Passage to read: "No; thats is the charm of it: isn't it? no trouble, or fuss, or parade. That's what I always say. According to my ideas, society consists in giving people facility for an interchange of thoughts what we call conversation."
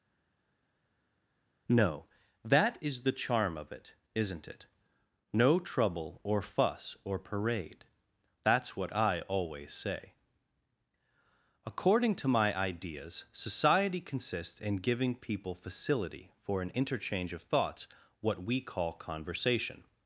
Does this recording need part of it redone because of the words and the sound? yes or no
yes